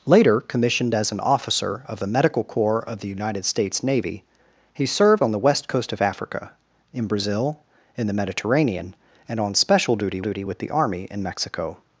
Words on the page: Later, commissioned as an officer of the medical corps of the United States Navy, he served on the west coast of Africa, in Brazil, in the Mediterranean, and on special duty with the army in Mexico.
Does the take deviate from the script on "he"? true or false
false